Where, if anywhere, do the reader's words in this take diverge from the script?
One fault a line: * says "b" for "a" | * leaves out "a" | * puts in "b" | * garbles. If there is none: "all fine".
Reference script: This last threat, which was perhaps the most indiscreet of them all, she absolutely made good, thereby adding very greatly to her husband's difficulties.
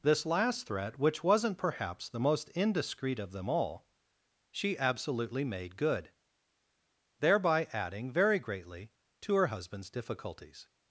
* says "wasn't" for "was"